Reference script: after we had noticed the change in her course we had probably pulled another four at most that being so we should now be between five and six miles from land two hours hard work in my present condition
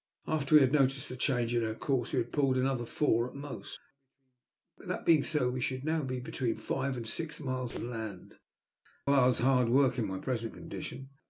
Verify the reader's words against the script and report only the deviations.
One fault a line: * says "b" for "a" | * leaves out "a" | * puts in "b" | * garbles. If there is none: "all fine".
* leaves out "probably"
* leaves out "two"